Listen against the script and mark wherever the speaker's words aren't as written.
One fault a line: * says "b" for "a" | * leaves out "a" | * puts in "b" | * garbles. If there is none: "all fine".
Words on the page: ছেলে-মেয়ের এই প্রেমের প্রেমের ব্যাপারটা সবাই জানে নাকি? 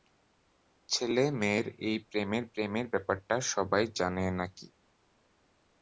all fine